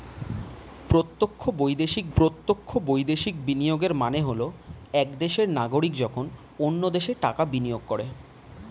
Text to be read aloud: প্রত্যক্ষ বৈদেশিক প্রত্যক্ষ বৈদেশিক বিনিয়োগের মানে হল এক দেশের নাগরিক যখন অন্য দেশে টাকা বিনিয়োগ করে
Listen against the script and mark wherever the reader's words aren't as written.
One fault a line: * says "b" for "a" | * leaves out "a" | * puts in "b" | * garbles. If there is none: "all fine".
all fine